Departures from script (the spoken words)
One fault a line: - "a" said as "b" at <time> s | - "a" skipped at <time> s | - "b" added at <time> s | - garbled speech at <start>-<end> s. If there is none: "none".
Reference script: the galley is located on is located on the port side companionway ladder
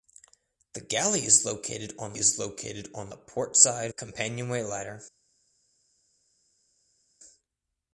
none